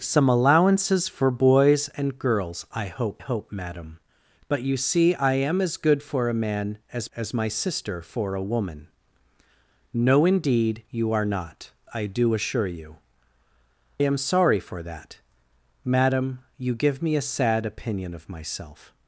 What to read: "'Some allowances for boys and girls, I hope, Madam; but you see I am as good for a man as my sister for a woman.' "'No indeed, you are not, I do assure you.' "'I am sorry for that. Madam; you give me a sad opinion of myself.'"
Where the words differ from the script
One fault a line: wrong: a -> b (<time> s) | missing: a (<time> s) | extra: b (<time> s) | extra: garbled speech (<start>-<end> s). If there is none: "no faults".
extra: hope (3.2 s)
extra: as (7.2 s)
missing: I (13.0 s)